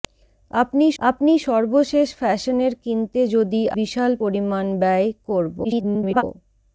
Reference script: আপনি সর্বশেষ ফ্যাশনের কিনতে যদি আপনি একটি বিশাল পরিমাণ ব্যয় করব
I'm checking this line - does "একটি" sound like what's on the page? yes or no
no